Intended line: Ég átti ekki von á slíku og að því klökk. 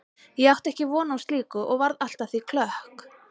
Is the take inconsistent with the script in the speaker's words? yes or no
yes